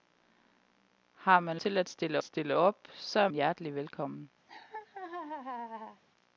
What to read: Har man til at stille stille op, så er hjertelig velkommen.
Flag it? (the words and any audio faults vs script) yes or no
yes